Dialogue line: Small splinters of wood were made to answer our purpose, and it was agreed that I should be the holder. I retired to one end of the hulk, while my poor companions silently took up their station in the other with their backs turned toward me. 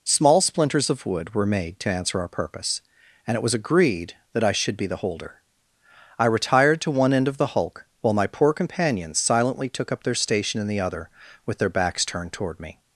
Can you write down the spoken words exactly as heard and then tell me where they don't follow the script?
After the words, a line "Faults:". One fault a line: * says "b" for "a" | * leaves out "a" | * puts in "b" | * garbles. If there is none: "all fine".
Small splinters of wood were made to answer our purpose, and it was agreed that I should be the holder. I retired to one end of the hulk, while my poor companions silently took up their station in the other with their backs turned toward me.
Faults:
all fine